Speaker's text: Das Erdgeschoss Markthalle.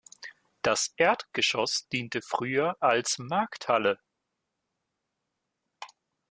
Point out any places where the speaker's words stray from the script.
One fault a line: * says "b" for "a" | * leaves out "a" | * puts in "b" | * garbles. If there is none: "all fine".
* puts in "diente früher als"